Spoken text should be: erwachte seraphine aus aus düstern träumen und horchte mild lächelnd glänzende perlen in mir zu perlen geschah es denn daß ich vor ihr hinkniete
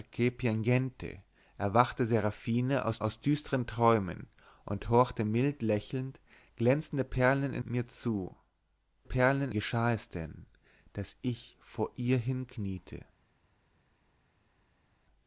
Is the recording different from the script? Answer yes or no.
no